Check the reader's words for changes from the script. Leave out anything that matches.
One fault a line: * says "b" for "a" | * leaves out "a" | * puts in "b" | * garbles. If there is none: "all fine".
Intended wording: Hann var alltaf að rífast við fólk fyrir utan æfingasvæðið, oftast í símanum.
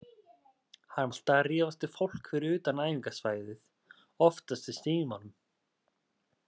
* leaves out "var"